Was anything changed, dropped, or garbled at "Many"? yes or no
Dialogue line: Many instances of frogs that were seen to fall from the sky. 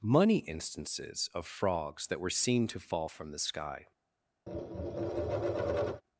yes